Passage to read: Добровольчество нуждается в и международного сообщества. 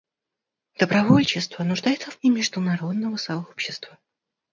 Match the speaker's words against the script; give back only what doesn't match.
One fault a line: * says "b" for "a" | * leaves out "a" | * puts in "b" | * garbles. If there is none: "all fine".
all fine